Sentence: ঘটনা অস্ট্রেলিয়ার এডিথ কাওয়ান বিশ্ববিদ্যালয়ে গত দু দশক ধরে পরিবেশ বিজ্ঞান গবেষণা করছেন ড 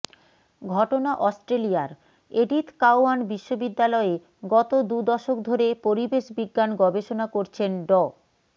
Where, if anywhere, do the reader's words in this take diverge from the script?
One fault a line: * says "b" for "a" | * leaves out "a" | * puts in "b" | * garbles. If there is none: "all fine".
all fine